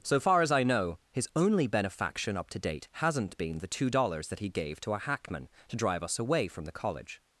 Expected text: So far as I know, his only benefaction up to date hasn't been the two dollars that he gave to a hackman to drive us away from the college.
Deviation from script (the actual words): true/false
false